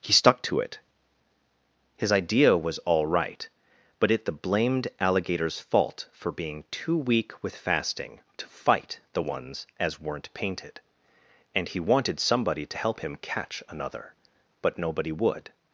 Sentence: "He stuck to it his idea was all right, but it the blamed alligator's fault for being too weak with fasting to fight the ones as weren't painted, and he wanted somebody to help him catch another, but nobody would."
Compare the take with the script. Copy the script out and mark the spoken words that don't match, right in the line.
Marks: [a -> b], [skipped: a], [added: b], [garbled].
"He stuck to it his idea was all right, but it the blamed alligator's fault for being too weak with fasting to fight the ones as weren't painted, and he wanted somebody to help him catch another, but nobody would."